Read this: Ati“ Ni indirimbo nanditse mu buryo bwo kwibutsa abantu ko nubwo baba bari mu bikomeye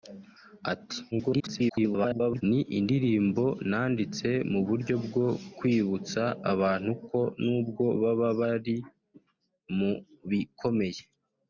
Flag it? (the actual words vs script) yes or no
yes